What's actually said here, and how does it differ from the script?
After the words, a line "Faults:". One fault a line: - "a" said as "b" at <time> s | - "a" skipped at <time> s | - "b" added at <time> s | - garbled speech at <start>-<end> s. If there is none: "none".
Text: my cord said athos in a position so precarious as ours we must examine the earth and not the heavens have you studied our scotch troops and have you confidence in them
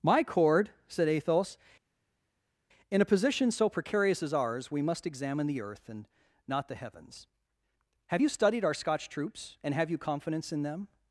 my cord said athos in a position so precarious as ours we must examine the earth and not the heavens have you studied our scotch troops and have you confidence in them
Faults:
none